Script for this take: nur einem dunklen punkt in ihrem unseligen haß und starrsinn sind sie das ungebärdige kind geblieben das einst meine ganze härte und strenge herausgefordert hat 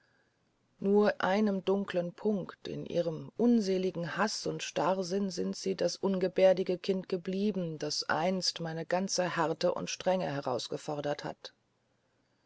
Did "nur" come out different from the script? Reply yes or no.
no